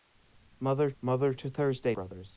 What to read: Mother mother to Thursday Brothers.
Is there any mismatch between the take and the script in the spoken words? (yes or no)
no